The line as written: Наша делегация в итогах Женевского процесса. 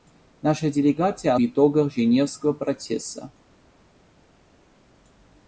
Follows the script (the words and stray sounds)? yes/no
yes